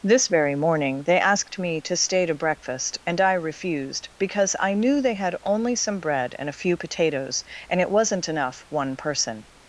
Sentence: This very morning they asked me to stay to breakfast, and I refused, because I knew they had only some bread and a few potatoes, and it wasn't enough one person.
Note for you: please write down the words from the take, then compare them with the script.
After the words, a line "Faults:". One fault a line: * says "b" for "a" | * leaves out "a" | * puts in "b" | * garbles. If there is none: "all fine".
This very morning they asked me to stay to breakfast, and I refused, because I knew they had only some bread and a few potatoes, and it wasn't enough one person.
Faults:
all fine